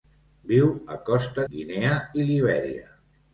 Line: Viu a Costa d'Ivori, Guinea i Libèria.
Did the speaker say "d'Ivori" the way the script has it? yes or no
no